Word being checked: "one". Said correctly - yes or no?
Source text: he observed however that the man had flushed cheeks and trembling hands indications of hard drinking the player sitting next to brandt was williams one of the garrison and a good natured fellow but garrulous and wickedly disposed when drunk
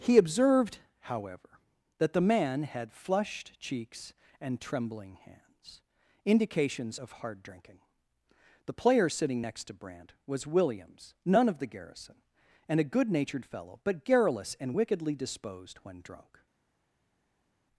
no